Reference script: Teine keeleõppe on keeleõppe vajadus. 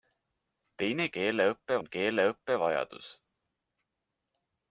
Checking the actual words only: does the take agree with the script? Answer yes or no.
yes